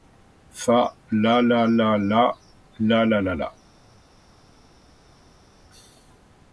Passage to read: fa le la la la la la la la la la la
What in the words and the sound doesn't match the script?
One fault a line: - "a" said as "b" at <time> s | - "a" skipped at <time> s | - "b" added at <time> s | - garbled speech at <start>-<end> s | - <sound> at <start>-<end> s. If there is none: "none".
- "le la la" skipped at 0.8 s